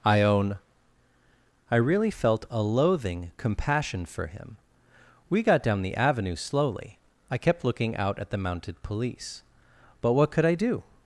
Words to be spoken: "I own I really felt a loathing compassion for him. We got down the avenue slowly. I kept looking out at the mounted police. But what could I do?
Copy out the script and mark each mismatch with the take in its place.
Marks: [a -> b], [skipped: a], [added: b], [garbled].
"I own I really felt a loathing compassion for him. We got down the avenue slowly. I kept looking out at the mounted police. But what could I do?